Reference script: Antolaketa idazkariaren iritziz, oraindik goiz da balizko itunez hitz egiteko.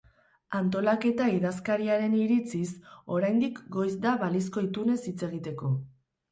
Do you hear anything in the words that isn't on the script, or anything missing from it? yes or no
no